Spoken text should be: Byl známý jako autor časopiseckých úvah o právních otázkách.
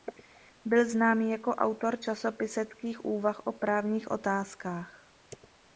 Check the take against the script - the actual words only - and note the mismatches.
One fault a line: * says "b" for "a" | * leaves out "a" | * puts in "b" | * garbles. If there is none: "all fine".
all fine